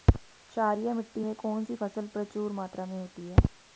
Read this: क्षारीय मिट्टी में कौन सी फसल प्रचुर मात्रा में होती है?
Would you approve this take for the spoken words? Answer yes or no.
yes